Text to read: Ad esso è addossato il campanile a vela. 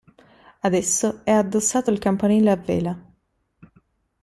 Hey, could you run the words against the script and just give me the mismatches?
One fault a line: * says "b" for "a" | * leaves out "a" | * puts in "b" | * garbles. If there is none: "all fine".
all fine